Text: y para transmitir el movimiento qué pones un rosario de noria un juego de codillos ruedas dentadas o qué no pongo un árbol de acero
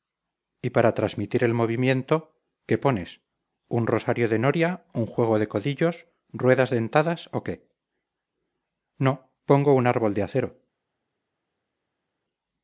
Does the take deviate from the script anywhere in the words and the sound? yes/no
no